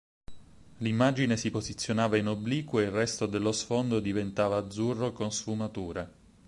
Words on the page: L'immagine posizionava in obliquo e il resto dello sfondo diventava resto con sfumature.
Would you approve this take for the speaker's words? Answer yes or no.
no